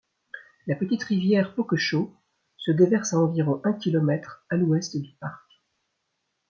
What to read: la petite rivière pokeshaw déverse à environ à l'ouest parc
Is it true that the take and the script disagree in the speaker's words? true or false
true